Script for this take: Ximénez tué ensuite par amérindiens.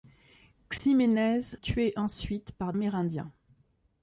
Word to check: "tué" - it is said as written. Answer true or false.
true